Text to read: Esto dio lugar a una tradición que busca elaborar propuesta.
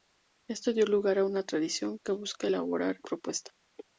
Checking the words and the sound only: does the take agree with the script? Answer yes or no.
yes